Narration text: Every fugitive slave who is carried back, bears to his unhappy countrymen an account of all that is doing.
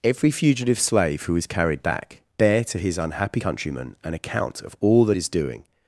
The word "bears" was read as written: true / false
false